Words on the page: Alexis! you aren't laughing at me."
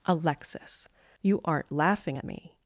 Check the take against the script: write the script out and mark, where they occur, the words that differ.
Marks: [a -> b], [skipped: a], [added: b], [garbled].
Alexis! you aren't laughing at me."